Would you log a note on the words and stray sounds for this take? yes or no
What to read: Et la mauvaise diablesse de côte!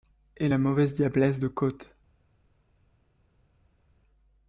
no